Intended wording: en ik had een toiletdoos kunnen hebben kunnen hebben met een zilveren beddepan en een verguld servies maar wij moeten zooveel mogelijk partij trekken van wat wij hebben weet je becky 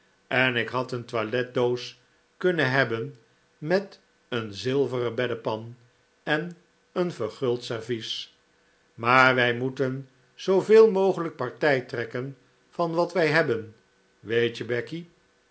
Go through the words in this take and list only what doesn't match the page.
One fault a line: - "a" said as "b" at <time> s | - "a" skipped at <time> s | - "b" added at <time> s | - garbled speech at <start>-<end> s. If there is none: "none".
- "kunnen hebben" skipped at 3.2 s